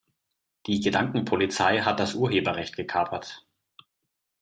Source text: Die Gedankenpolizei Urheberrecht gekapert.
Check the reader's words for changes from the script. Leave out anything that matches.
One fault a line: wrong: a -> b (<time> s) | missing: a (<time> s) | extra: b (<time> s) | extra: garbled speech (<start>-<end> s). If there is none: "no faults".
extra: hat das (1.8 s)